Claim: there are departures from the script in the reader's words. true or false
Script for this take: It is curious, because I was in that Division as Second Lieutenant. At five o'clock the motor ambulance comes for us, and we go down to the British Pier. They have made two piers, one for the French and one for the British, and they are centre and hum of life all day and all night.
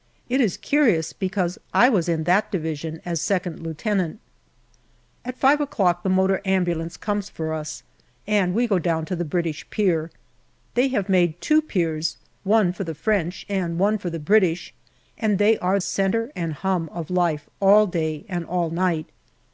false